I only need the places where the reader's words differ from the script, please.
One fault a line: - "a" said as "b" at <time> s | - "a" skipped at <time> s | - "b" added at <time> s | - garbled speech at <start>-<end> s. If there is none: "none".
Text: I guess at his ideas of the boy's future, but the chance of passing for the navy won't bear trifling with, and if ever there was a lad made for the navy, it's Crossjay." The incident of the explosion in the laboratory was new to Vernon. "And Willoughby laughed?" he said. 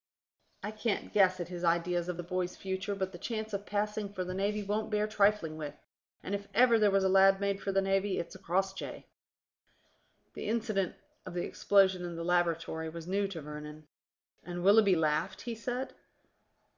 - "can't" added at 0.7 s